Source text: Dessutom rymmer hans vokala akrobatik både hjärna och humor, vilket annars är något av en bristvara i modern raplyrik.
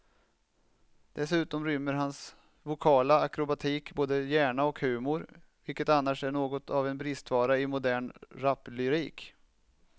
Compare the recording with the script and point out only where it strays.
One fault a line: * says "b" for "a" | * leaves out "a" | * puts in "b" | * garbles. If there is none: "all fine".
all fine